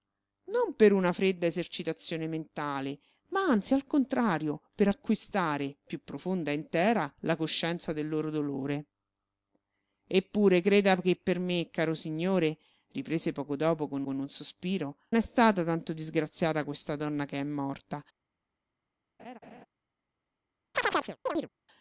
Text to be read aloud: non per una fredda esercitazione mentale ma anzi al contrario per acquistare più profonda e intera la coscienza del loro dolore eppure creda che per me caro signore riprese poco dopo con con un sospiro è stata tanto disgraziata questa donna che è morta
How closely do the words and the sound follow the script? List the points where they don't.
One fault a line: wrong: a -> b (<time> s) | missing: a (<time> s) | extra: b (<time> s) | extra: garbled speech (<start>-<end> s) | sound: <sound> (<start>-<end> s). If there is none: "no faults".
sound: laugh (19.2-19.7 s)
sound: chirp (20.7-21.5 s)